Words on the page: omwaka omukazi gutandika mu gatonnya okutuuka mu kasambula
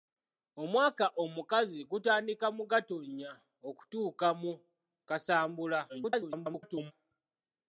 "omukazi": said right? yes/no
yes